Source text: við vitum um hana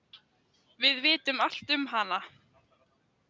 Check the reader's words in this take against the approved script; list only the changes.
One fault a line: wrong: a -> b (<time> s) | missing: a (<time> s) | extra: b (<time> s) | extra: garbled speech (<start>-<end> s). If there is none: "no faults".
extra: allt (1.4 s)